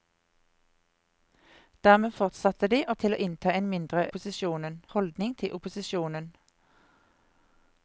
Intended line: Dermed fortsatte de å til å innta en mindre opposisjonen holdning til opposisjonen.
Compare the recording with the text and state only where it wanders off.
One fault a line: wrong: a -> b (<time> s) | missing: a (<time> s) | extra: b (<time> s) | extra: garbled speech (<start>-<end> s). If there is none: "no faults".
no faults